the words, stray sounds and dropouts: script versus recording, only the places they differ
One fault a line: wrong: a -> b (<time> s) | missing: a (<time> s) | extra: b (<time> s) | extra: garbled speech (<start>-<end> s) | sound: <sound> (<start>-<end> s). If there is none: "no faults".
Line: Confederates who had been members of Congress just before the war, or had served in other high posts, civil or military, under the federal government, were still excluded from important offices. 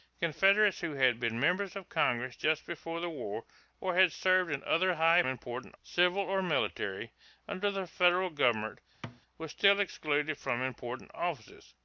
wrong: posts -> important (5.3 s)
sound: thud (9.0-9.2 s)